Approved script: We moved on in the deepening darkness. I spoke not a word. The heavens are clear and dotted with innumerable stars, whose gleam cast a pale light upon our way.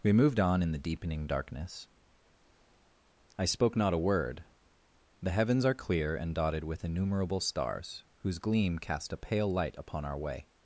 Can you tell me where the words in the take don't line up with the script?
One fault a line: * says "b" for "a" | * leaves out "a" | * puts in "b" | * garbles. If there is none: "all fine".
all fine